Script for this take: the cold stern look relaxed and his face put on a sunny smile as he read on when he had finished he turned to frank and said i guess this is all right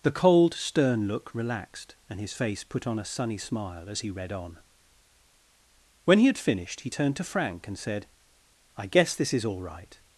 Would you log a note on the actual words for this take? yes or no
no